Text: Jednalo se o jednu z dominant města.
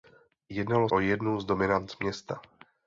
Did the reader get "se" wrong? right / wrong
wrong